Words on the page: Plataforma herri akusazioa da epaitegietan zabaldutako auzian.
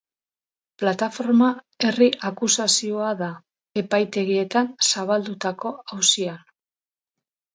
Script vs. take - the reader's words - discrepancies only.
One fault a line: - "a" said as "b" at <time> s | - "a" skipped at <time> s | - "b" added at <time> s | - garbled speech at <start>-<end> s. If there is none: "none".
none